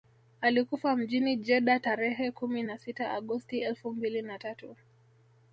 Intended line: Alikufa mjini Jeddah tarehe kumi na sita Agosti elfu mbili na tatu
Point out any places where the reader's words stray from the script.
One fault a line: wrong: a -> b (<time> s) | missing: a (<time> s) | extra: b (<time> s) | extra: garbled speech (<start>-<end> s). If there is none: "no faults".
no faults